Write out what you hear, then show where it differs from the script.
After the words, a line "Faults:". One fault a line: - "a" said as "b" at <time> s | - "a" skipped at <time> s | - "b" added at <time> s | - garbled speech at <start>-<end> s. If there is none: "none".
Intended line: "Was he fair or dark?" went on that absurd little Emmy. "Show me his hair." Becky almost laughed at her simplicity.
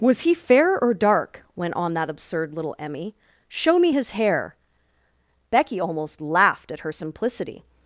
"Was he fair or dark?" went on that absurd little Emmy. "Show me his hair." Becky almost laughed at her simplicity.
Faults:
none